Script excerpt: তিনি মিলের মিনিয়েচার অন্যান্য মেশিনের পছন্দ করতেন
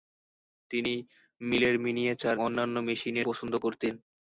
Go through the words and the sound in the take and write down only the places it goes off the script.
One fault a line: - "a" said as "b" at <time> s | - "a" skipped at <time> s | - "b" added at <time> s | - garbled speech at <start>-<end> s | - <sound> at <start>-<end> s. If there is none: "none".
none